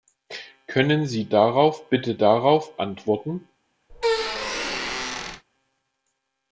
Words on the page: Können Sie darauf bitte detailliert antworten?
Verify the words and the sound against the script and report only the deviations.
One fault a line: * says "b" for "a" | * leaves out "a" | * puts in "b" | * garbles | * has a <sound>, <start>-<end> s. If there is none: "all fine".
* says "darauf" for "detailliert"
* has a squeak, 3.9-5.4 s